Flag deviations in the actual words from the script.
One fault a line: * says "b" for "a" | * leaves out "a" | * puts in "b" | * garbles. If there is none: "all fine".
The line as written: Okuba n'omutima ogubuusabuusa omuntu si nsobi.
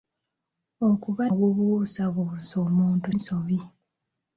* leaves out "n'omutima"
* leaves out "si"